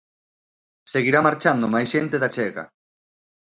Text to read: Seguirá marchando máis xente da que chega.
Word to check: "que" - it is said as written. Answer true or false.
false